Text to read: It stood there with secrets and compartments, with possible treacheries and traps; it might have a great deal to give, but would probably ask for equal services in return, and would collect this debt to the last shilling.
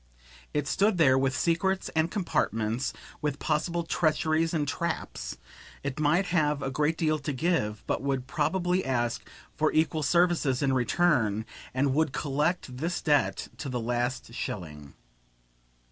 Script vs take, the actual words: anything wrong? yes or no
no